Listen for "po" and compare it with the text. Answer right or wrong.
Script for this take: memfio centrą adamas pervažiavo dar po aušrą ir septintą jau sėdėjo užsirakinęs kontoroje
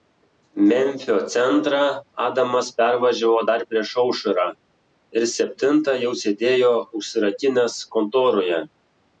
wrong